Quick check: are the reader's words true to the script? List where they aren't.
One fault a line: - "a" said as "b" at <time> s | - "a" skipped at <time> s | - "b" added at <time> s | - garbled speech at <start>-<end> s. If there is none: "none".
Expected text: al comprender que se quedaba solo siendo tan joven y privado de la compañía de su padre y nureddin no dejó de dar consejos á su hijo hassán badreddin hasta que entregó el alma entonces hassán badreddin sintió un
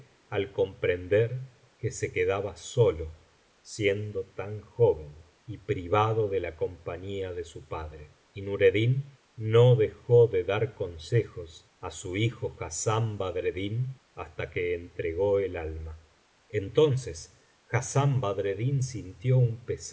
none